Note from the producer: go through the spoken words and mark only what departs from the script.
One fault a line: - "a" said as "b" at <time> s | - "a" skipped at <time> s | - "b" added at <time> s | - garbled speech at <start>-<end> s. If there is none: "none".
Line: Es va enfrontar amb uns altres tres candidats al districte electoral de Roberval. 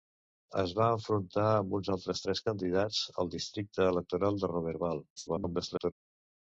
- garbled speech at 5.2-5.9 s